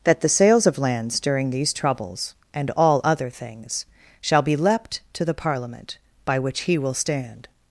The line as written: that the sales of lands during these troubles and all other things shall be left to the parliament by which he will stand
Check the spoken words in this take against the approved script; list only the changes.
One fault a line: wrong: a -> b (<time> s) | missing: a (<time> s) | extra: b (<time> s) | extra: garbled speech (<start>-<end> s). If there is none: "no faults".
wrong: left -> leapt (4.5 s)